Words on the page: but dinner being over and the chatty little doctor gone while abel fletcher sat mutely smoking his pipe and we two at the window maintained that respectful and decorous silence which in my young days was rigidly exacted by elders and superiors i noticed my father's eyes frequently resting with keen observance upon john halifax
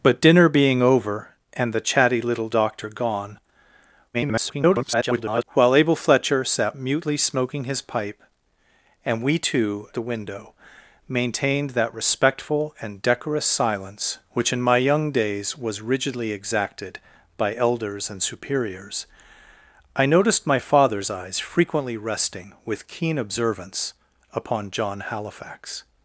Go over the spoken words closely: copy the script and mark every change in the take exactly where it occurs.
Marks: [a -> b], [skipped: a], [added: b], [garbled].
but dinner being over and the chatty little doctor gone [garbled] while abel fletcher sat mutely smoking his pipe and we two [skipped: at] the window maintained that respectful and decorous silence which in my young days was rigidly exacted by elders and superiors i noticed my father's eyes frequently resting with keen observance upon john halifax